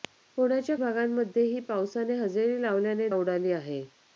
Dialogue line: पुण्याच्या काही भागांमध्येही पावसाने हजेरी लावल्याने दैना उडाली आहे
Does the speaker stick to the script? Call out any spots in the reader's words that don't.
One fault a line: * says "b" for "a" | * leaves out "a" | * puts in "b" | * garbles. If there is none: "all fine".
* leaves out "काही"
* leaves out "दैना"